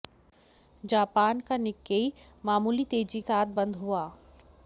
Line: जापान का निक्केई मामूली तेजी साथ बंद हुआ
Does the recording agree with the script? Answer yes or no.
yes